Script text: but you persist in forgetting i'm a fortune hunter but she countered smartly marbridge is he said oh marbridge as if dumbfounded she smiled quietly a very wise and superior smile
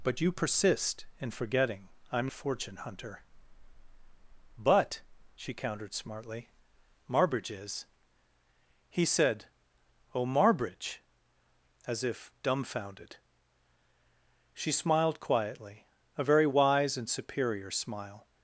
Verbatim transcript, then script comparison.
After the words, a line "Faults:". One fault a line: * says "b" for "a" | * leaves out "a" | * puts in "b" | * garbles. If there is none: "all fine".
but you persist in forgetting i'm a fortune hunter but she countered smartly marbridge is he said oh marbridge as if dumbfounded she smiled quietly a very wise and superior smile
Faults:
all fine